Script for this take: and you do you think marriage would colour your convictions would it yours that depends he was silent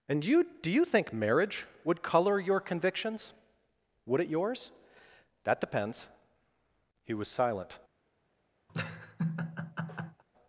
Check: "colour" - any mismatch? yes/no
no